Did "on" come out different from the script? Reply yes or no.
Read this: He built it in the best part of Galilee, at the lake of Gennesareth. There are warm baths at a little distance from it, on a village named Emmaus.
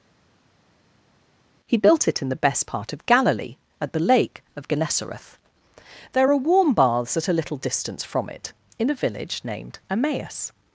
yes